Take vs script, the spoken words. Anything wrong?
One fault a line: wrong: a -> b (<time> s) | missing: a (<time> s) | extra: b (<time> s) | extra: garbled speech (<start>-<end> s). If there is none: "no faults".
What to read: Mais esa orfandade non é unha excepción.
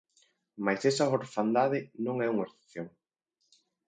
no faults